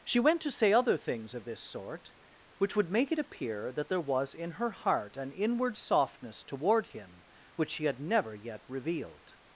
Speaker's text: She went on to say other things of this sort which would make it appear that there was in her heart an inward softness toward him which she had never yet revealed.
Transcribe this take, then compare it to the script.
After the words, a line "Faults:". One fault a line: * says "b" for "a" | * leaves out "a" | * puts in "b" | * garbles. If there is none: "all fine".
She went to say other things of this sort which would make it appear that there was in her heart an inward softness toward him which she had never yet revealed.
Faults:
* leaves out "on"